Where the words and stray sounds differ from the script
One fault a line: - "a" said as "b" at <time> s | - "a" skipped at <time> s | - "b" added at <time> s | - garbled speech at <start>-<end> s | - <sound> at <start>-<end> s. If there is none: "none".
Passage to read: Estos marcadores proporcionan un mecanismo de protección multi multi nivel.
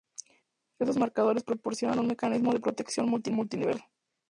none